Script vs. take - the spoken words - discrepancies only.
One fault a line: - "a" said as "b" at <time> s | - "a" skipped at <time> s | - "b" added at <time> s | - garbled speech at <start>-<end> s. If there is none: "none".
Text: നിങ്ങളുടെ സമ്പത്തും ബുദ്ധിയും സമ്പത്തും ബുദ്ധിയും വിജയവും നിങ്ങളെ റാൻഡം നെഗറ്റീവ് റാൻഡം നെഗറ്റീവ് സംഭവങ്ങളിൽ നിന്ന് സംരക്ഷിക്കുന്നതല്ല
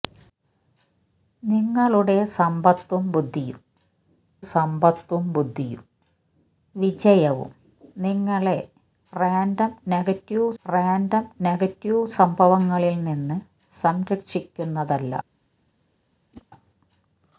none